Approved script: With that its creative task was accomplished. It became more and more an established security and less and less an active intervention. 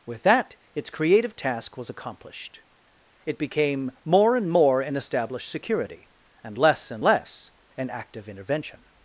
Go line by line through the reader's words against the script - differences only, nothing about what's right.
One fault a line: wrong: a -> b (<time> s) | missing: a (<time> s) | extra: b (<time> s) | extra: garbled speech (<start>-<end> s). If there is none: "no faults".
no faults